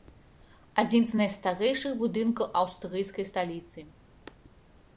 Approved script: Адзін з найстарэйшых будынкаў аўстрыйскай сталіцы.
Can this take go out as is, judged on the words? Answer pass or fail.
pass